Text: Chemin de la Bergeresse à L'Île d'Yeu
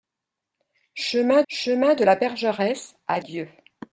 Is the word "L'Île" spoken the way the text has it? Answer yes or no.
no